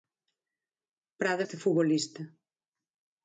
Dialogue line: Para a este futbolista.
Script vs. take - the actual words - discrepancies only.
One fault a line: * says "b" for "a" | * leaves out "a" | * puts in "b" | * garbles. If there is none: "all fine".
all fine